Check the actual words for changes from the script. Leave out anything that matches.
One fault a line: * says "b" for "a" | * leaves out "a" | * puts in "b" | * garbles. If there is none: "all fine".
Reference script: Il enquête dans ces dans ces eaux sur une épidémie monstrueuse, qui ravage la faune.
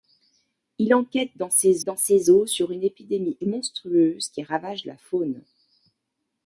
all fine